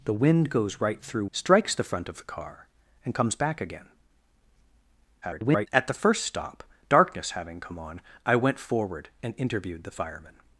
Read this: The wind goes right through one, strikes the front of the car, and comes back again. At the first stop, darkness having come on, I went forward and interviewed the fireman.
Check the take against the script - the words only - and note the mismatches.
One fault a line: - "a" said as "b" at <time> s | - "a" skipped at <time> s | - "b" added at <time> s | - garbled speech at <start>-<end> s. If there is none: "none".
- "one" skipped at 1.2 s
- garbled speech at 5.2-5.7 s